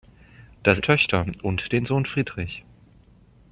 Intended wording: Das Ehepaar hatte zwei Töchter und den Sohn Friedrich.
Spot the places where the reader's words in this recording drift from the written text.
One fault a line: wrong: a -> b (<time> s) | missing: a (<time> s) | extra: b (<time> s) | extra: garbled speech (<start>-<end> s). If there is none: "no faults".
missing: Ehepaar hatte zwei (0.8 s)